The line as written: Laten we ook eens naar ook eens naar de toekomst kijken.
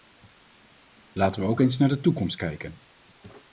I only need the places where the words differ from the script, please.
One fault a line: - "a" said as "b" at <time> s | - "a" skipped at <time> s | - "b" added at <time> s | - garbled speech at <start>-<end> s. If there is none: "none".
- "ook eens naar" skipped at 1.9 s